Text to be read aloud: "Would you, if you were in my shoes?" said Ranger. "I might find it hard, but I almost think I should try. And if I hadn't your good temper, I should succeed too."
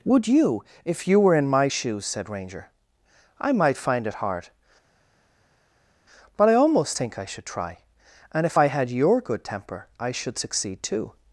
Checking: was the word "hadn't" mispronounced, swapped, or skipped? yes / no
yes